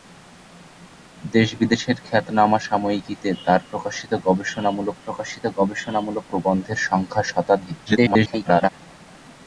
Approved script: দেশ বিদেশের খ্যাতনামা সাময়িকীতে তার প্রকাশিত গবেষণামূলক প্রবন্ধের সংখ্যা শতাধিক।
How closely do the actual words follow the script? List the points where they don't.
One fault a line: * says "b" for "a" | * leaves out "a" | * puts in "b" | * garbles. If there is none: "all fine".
* puts in "প্রকাশিত গবেষণামূলক"
* garbles